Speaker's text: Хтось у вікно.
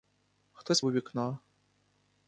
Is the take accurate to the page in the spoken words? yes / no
yes